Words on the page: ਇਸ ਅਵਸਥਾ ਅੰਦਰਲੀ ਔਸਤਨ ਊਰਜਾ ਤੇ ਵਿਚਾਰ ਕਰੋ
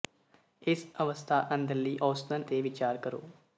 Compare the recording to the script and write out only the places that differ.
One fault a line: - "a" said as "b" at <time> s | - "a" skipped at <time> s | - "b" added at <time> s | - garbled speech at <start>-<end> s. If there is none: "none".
- "ਊਰਜਾ" skipped at 2.4 s